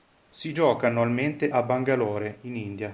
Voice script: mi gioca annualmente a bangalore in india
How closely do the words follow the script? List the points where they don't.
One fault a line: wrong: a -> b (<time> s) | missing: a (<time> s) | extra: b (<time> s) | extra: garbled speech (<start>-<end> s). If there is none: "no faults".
wrong: mi -> si (0.3 s)